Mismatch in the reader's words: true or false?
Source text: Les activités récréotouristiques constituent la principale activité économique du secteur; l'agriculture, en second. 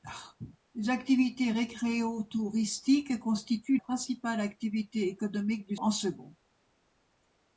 true